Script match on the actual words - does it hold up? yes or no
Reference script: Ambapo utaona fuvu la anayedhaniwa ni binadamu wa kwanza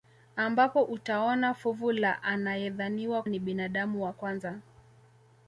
yes